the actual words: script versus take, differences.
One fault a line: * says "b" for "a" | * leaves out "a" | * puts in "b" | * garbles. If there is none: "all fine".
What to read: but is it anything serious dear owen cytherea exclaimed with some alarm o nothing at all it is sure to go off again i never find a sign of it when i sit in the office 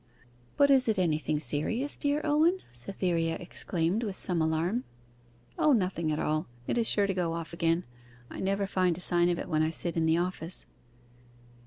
all fine